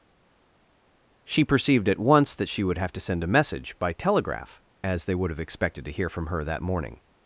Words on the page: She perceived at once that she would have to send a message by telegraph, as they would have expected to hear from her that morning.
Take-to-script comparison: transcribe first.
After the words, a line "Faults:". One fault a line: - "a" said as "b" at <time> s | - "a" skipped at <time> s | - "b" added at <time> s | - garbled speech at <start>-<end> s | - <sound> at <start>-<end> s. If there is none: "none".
She perceived at once that she would have to send a message by telegraph, as they would have expected to hear from her that morning.
Faults:
none